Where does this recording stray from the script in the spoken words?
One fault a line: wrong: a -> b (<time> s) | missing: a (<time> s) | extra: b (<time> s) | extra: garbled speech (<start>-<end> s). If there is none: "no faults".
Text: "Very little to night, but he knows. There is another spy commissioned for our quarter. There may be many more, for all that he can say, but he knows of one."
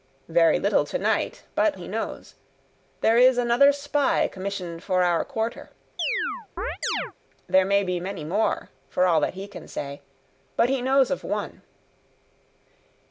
no faults